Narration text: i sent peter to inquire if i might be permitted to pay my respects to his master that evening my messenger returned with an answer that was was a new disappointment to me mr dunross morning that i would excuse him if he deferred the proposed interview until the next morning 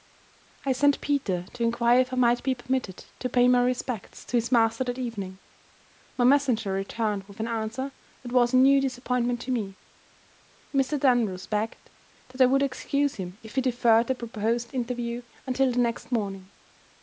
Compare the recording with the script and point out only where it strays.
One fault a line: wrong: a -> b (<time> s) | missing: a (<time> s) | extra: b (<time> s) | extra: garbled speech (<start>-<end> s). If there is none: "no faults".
missing: was (8.5 s)
wrong: morning -> begged (11.5 s)